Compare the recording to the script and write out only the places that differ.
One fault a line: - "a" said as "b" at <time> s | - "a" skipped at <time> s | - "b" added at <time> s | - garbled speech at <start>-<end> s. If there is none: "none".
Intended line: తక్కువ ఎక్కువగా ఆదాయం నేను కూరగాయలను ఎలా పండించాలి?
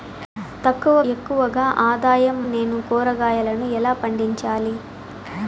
none